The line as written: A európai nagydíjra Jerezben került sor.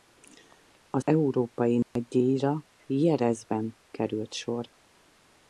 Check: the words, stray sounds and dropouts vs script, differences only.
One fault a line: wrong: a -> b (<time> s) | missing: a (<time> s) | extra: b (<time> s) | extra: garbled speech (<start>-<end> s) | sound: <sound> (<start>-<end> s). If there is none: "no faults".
sound: dropout (1.8-2.0 s)